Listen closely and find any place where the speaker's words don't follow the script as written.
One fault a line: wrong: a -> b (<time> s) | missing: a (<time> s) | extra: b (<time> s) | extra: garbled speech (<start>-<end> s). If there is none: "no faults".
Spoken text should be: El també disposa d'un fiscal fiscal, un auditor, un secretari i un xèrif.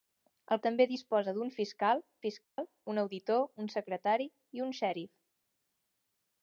no faults